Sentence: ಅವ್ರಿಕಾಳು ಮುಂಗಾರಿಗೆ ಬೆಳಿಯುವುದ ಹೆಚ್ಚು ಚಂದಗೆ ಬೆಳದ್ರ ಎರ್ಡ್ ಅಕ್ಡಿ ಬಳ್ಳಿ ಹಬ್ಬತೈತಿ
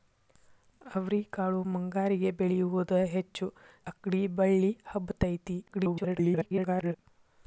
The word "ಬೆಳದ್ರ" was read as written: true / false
false